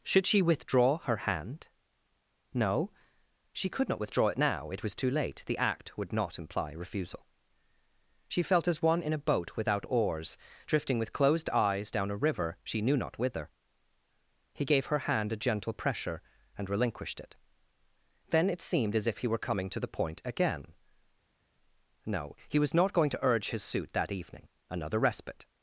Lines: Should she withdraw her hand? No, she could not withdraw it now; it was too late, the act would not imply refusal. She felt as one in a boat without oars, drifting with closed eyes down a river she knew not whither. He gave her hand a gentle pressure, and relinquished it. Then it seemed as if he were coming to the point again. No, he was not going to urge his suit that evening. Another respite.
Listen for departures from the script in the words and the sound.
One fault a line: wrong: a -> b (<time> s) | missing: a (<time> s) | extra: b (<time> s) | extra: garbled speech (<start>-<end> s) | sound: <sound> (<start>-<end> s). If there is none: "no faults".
no faults